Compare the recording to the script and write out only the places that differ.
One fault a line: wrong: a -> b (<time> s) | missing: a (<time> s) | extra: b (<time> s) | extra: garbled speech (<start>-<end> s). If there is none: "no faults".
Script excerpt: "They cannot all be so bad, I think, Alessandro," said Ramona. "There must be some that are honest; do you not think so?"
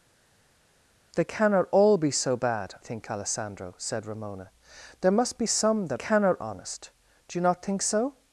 missing: I (2.7 s)
wrong: are -> cannot (5.9 s)